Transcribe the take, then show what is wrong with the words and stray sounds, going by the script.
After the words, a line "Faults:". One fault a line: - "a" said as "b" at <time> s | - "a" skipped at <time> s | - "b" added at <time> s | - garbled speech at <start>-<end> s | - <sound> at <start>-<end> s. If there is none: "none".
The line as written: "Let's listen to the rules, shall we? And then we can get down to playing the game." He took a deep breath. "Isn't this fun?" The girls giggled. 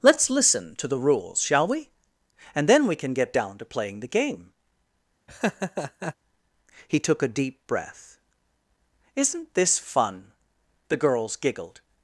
"Let's listen to the rules, shall we? And then we can get down to playing the game." He took a deep breath. "Isn't this fun?" The girls giggled.
Faults:
- laugh at 5.3-6.1 s